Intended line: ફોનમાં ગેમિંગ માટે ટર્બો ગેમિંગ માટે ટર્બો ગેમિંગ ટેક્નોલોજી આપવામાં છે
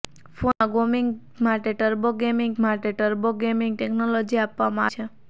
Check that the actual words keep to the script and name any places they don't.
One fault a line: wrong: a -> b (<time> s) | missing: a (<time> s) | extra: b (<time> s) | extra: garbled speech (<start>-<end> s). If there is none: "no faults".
no faults